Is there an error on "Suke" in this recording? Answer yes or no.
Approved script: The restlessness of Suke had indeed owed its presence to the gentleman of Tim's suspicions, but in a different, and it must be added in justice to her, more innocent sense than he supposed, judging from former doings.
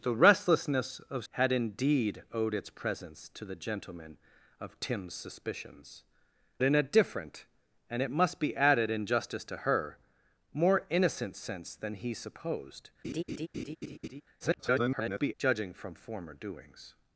yes